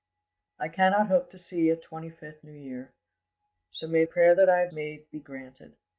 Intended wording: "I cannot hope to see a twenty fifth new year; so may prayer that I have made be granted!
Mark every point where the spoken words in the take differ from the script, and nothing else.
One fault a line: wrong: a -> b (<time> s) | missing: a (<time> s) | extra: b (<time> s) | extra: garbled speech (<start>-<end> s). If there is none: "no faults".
no faults